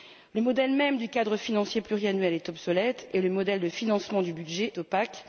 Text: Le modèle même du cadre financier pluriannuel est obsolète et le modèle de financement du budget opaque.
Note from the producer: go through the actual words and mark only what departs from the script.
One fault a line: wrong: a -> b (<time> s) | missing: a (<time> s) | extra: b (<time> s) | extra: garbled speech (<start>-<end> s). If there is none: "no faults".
no faults